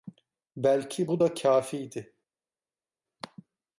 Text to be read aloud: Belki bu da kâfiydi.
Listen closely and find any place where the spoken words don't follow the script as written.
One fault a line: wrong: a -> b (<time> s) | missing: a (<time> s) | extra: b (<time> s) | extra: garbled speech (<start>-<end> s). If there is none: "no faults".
no faults